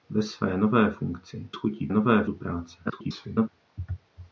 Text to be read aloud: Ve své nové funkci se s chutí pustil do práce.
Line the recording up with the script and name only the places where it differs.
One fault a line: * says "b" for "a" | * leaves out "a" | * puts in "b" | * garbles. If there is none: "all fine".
* leaves out "se"
* says "nové" for "pustil"
* garbles